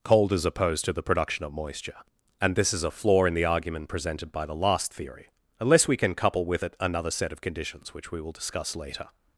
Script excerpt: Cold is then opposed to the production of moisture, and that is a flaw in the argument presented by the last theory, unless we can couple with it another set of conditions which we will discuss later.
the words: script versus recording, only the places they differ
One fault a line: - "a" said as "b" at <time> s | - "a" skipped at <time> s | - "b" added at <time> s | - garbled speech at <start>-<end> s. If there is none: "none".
- "then" skipped at 0.5 s
- "that" said as "this" at 2.5 s